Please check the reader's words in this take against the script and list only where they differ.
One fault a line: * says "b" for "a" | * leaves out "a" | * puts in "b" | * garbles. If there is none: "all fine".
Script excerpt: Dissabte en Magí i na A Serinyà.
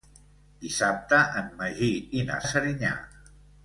all fine